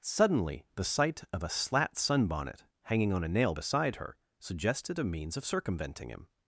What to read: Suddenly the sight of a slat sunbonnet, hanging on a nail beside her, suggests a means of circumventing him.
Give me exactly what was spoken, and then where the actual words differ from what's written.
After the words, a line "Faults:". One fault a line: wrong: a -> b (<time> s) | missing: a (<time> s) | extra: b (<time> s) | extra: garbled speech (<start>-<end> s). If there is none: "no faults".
Suddenly the sight of a slat sunbonnet, hanging on a nail beside her, suggested a means of circumventing him.
Faults:
wrong: suggests -> suggested (4.4 s)